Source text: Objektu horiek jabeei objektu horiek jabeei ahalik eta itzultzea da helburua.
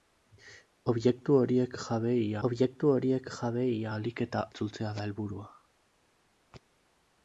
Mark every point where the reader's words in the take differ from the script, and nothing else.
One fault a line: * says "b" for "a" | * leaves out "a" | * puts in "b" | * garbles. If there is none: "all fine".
all fine